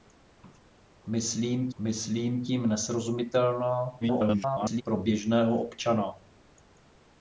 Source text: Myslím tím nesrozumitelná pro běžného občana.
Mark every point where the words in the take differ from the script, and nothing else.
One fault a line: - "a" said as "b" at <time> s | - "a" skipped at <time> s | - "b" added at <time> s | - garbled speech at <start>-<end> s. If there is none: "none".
- "myslím" added at 1.8 s
- garbled speech at 4.0-4.8 s